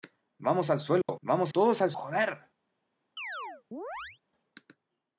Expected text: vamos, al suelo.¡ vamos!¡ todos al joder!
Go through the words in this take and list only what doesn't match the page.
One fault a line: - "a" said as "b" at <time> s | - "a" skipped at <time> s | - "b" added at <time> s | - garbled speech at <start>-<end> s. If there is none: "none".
none